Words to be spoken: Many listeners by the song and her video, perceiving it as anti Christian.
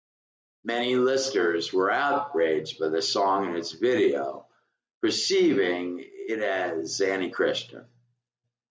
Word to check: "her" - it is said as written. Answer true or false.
false